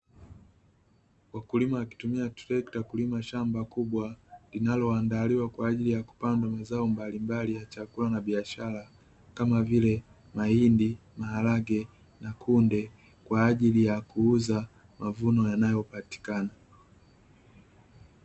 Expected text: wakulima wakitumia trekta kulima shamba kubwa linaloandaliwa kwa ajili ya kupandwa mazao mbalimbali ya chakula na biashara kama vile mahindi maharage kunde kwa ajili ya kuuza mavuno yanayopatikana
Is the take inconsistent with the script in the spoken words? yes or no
yes